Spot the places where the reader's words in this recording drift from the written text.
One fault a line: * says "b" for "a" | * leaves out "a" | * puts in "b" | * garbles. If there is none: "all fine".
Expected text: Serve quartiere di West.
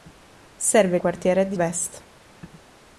all fine